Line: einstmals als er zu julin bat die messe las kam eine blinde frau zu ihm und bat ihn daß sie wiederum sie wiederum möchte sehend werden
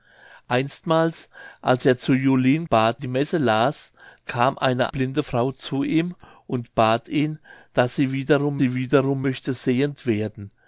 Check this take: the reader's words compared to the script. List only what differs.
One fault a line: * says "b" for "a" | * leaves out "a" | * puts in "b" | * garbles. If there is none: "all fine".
all fine